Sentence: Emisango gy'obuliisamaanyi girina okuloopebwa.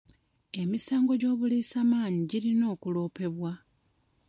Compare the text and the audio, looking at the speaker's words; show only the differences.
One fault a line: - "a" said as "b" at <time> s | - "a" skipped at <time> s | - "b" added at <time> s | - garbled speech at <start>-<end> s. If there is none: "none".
none